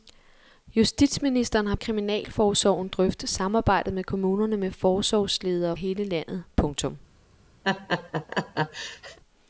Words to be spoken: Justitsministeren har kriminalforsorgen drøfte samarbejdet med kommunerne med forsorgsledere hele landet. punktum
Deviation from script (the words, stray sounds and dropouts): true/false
true